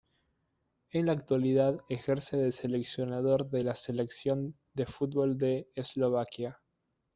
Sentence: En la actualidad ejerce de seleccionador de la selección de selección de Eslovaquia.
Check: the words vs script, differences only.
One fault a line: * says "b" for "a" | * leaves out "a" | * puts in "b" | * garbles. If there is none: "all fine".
* says "fútbol" for "selección"